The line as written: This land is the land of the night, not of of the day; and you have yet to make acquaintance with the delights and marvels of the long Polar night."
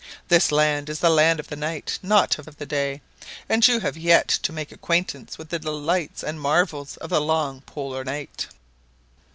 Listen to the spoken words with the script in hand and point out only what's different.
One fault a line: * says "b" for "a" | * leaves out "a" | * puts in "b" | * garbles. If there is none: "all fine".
all fine